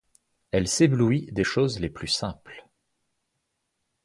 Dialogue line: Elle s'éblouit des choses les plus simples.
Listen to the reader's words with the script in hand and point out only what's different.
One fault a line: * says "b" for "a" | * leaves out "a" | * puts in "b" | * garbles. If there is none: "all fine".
all fine